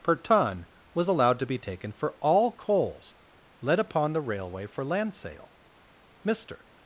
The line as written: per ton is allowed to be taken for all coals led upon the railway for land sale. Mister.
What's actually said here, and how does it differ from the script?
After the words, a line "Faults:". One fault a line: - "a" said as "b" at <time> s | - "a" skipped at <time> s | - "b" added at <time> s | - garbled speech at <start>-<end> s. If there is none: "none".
per ton was allowed to be taken for all coals led upon the railway for land sale. Mister.
Faults:
- "is" said as "was" at 0.9 s